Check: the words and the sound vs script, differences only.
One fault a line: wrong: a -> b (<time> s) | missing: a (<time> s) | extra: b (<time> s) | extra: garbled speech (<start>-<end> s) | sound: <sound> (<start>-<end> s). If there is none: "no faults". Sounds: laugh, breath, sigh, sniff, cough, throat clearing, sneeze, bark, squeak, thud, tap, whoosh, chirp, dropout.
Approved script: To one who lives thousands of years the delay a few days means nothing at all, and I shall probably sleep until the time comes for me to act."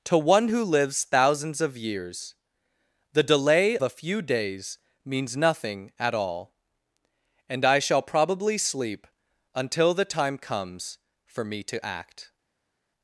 no faults